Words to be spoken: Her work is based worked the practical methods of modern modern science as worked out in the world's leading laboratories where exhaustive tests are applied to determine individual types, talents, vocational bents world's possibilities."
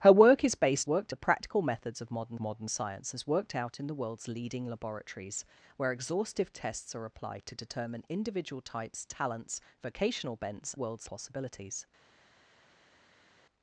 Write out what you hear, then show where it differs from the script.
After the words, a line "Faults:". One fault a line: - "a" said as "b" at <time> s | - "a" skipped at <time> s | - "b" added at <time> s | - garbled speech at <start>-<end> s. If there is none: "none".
Her work is based worked the practical methods of modern modern science as worked out in the world's leading laboratories where exhaustive tests are applied to determine individual types, talents, vocational bents world's possibilities."
Faults:
none